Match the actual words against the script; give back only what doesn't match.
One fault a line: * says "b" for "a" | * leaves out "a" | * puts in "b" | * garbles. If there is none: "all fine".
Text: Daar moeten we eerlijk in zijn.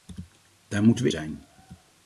* leaves out "eerlijk in"